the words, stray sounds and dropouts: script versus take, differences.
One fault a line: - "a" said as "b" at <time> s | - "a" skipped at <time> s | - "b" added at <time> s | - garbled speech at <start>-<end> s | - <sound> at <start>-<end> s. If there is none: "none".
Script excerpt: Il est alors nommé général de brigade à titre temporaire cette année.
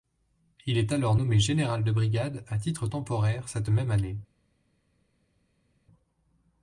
- "même" added at 3.7 s